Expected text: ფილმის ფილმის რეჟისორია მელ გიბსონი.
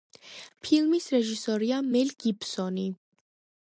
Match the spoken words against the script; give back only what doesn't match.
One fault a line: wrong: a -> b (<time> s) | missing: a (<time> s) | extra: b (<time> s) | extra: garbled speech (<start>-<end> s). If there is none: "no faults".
missing: ფილმის (1.1 s)